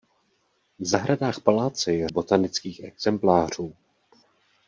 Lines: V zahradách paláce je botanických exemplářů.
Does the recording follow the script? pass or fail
pass